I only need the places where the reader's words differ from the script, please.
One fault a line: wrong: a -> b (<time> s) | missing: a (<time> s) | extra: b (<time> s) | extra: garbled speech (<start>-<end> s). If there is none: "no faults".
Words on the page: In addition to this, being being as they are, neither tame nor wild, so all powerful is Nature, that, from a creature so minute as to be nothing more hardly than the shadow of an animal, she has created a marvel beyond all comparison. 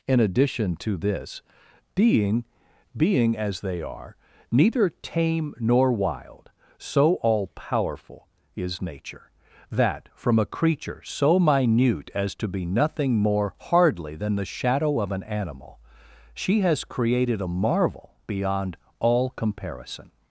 no faults